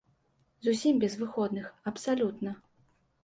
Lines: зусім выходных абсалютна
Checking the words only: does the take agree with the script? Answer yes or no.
no